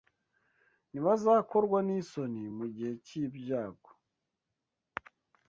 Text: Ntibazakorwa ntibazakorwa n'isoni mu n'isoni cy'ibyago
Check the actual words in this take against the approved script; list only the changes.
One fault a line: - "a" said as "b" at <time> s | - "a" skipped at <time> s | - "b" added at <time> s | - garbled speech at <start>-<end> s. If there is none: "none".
- "ntibazakorwa" skipped at 1.8 s
- "n'isoni" said as "gihe" at 2.8 s